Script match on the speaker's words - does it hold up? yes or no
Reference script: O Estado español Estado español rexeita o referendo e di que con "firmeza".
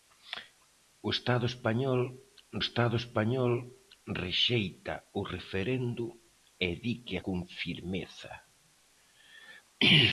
yes